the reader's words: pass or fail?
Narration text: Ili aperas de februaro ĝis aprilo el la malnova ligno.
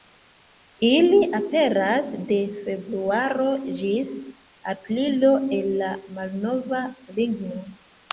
pass